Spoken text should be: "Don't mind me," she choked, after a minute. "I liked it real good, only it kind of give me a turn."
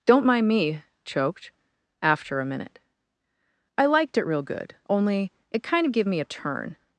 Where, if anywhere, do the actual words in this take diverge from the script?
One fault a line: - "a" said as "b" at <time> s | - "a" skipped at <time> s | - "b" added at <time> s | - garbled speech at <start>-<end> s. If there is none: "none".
- "she" skipped at 0.8 s